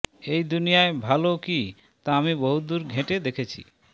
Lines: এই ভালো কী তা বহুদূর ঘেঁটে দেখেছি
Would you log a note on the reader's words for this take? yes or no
yes